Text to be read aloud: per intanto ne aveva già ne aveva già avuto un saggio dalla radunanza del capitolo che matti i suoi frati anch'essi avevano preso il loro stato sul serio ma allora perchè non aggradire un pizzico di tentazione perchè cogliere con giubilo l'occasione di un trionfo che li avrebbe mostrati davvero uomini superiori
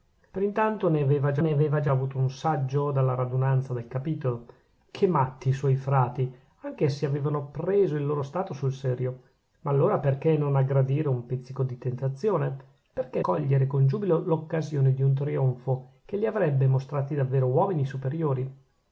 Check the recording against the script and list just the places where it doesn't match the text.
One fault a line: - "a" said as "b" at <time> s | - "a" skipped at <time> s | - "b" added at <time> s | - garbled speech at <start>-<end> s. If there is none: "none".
none